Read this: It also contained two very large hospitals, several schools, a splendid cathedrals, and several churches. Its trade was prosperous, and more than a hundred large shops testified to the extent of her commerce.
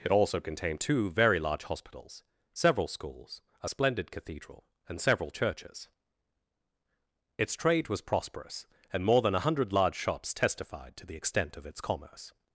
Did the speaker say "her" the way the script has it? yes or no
no